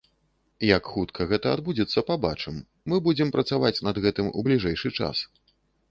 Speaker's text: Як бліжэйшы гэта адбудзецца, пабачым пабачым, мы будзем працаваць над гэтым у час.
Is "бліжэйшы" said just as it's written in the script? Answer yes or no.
no